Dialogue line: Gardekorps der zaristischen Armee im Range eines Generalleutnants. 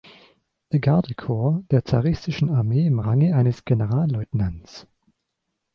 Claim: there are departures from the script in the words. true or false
false